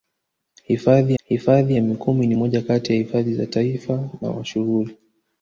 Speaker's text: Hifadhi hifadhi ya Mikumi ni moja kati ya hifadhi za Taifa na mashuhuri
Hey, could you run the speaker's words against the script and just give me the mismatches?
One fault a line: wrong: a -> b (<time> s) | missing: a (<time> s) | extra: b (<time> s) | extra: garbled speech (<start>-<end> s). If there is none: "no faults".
no faults